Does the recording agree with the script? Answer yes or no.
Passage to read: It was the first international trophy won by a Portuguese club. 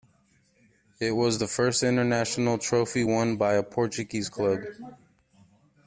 yes